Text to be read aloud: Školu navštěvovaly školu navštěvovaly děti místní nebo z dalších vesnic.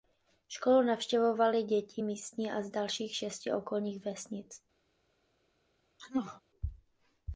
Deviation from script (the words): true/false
true